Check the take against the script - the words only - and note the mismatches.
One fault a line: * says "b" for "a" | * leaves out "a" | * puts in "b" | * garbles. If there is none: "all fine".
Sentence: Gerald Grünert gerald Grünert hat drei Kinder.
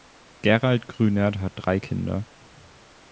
* leaves out "gerald Grünert"